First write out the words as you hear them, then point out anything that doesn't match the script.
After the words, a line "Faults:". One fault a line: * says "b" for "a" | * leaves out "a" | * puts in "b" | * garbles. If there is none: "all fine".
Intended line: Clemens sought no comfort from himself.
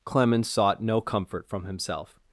Clemens sought no comfort from himself.
Faults:
all fine